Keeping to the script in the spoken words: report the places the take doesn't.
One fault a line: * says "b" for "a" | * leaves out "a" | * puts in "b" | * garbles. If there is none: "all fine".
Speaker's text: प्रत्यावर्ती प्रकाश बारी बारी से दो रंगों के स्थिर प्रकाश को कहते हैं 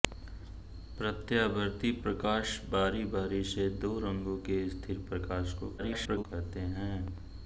* garbles